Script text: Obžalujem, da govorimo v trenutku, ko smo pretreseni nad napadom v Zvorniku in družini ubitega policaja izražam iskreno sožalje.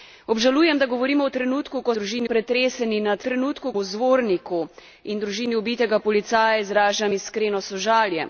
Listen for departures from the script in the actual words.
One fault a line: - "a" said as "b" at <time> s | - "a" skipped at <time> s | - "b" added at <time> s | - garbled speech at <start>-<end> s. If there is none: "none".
- "smo" said as "družini" at 1.9 s
- "napadom" said as "trenutku" at 3.2 s